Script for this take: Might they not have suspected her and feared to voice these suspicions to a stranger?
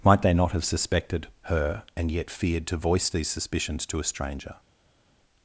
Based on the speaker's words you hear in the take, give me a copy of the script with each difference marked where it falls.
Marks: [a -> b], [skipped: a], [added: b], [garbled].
Might they not have suspected her and [added: yet] feared to voice these suspicions to a stranger?